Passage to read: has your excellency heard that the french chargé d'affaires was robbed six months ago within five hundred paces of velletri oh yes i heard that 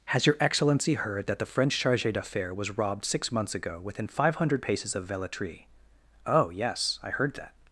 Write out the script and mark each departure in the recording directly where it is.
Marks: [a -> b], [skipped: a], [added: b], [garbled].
has your excellency heard that the french chargé d'affaires was robbed six months ago within five hundred paces of velletri oh yes i heard that